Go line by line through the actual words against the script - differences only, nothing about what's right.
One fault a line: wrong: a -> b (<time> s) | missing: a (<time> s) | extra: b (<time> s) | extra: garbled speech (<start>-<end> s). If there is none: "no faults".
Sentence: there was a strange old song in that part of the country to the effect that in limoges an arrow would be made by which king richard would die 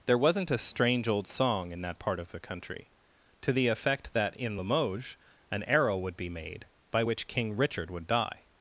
wrong: was -> wasn't (0.2 s)